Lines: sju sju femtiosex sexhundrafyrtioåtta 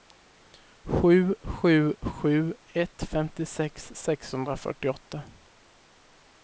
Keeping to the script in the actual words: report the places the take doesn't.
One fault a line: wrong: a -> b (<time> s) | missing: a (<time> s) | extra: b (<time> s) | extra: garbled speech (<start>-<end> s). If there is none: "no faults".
extra: sju ett (2.0 s)